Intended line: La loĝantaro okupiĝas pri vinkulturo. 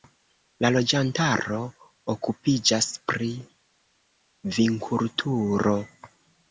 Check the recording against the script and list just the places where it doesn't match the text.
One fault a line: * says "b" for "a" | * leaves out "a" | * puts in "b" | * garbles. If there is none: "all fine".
all fine